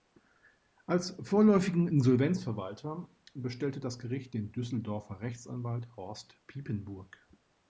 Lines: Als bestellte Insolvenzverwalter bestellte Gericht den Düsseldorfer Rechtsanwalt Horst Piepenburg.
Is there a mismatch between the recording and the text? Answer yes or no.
yes